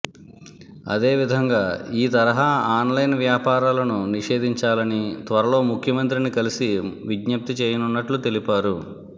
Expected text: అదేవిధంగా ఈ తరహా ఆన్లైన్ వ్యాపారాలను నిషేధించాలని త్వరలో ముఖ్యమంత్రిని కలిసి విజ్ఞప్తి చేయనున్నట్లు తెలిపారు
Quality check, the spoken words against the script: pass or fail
pass